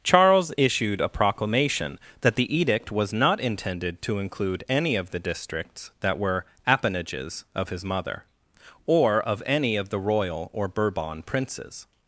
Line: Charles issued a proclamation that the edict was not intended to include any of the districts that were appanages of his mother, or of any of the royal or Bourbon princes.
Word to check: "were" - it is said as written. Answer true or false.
true